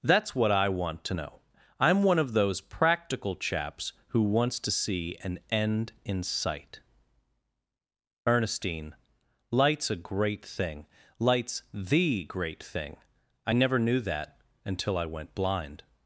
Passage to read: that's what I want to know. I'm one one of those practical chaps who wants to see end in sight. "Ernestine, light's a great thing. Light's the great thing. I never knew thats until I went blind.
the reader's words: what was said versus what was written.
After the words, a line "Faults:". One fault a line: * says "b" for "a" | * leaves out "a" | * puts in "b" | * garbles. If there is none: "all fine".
that's what I want to know. I'm one of those practical chaps who wants to see an end in sight. "Ernestine, light's a great thing. Light's the great thing. I never knew that until I went blind.
Faults:
* leaves out "one"
* puts in "an"
* says "that" for "thats"